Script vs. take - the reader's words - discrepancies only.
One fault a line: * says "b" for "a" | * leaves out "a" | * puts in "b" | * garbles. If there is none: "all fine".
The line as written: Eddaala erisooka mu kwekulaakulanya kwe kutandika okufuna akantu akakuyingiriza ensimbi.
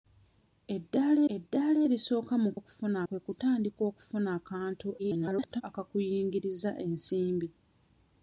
* puts in "eddaala"
* says "okufuna" for "kwekulaakulanya"
* garbles